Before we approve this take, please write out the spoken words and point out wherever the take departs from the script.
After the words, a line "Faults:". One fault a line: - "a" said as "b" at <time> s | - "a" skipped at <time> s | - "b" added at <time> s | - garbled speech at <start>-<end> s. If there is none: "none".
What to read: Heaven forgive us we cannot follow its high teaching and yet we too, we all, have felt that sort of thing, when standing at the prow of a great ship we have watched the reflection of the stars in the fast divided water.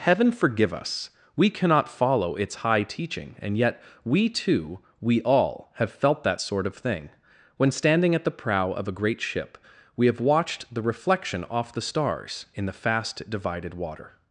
Heaven forgive us we cannot follow its high teaching and yet we too, we all, have felt that sort of thing, when standing at the prow of a great ship we have watched the reflection off the stars in the fast divided water.
Faults:
- "of" said as "off" at 11.4 s